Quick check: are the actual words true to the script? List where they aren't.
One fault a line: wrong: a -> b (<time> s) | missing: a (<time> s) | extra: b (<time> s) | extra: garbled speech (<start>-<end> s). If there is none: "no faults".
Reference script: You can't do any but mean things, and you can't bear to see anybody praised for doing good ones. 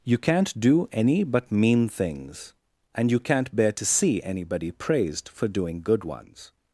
no faults